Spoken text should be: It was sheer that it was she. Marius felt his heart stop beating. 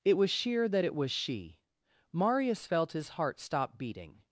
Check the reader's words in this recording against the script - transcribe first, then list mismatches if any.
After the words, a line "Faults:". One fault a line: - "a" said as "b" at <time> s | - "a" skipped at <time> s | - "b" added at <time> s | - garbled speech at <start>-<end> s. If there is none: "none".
It was sheer that it was she. Marius felt his heart stop beating.
Faults:
none